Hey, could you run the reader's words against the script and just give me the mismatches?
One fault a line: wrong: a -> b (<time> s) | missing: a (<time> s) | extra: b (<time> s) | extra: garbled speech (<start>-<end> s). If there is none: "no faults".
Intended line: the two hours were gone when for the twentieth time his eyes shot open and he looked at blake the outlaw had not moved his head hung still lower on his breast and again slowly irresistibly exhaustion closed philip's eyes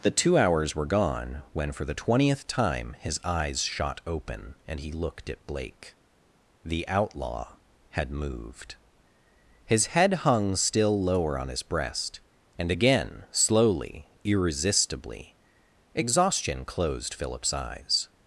missing: not (8.1 s)